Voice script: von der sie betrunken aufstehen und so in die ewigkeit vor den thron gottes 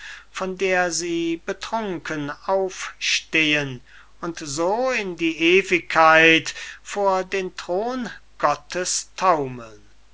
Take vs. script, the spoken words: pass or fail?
pass